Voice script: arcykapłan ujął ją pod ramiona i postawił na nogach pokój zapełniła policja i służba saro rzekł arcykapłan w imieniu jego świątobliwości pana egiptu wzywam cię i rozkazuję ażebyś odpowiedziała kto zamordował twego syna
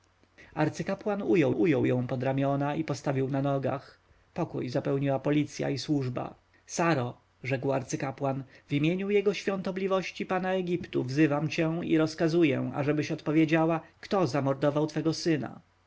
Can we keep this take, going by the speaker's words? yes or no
no